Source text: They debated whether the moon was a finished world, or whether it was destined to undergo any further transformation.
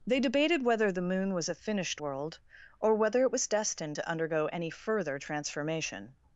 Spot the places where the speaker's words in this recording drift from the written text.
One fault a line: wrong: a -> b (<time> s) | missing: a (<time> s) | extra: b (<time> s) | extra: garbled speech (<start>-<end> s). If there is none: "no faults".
no faults